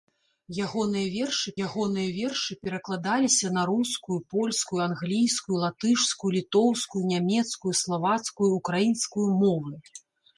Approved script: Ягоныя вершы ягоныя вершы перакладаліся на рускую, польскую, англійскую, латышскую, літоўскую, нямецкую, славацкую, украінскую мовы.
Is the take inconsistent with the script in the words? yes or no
no